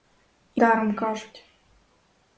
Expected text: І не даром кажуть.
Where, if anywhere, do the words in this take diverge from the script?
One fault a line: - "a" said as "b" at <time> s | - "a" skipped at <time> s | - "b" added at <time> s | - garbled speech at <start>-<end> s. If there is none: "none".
- "не" skipped at 0.6 s